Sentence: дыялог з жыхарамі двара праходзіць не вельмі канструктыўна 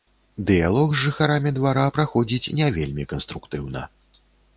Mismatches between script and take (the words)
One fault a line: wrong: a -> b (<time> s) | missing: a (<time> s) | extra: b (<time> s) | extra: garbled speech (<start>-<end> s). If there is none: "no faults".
no faults